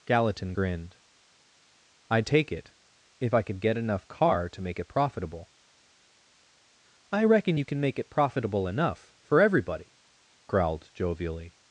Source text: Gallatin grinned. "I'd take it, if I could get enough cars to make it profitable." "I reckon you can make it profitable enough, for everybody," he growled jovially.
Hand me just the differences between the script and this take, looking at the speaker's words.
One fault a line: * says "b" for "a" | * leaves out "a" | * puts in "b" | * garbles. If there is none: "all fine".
* says "car" for "cars"
* leaves out "he"